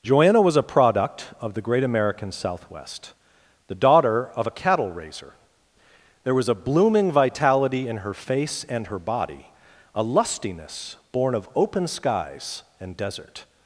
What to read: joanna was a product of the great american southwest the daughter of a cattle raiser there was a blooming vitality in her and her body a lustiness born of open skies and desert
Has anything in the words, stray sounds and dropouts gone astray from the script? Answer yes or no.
yes